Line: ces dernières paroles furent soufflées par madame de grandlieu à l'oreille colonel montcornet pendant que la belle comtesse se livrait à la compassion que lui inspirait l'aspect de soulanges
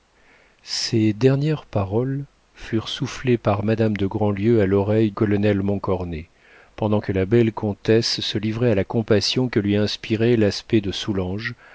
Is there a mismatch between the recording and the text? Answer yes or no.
no